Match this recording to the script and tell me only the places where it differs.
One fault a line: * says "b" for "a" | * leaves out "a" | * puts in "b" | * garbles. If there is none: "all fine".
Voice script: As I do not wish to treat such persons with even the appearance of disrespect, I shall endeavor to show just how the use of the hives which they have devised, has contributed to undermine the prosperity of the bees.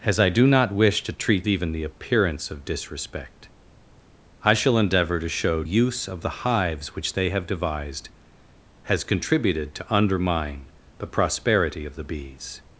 * leaves out "such persons with"
* leaves out "just how the"